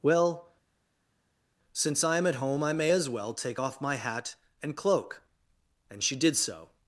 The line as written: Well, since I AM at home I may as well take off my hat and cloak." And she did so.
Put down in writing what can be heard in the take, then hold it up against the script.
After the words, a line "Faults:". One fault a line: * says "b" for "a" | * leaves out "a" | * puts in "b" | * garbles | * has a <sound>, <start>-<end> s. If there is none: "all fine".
Well, since I AM at home I may as well take off my hat and cloak." And she did so.
Faults:
all fine